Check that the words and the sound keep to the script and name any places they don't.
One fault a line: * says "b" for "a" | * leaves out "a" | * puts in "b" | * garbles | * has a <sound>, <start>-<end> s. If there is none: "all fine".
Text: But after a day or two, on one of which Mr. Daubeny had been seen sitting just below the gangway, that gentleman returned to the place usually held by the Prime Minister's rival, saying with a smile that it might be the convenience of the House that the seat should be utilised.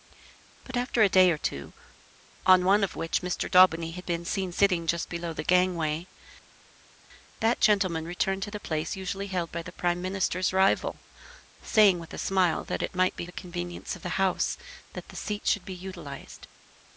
all fine